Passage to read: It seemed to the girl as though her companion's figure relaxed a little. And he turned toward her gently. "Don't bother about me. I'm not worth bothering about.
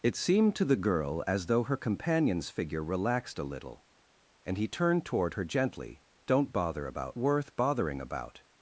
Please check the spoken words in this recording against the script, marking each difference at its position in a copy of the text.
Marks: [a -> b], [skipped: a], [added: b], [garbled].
It seemed to the girl as though her companion's figure relaxed a little. And he turned toward her gently. "Don't bother about [skipped: me. I'm not] worth bothering about.